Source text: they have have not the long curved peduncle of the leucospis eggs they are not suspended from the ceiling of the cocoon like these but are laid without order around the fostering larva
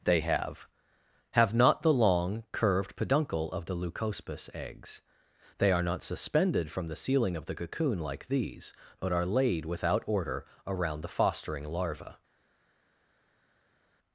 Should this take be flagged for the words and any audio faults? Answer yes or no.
no